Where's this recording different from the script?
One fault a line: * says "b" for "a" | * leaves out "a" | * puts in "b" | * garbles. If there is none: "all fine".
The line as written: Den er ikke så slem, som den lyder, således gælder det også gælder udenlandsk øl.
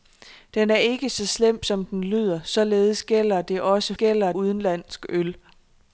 all fine